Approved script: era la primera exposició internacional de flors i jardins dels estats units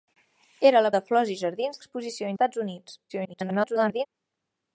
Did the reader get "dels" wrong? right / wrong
wrong